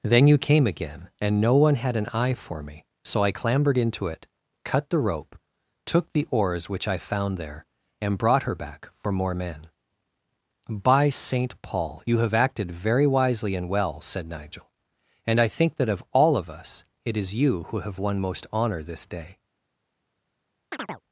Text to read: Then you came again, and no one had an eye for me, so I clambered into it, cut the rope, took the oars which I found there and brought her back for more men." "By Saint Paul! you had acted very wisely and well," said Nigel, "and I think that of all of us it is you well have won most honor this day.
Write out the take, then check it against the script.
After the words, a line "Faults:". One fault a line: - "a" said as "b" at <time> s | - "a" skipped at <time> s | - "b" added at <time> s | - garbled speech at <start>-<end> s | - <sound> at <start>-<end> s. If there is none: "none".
Then you came again, and no one had an eye for me, so I clambered into it, cut the rope, took the oars which I found there and brought her back for more men." "By Saint Paul! you have acted very wisely and well," said Nigel, "and I think that of all of us it is you who have won most honor this day.
Faults:
- "had" said as "have" at 12.2 s
- "well" said as "who" at 17.7 s
- chirp at 20.7-21.0 s